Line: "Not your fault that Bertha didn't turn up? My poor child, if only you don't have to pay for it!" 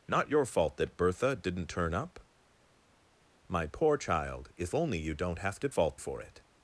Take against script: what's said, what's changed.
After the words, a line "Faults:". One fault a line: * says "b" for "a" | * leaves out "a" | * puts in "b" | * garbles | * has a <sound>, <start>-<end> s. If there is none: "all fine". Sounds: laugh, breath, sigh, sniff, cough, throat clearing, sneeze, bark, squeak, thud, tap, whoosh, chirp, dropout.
"Not your fault that Bertha didn't turn up? My poor child, if only you don't have to fault for it!"
Faults:
* says "fault" for "pay"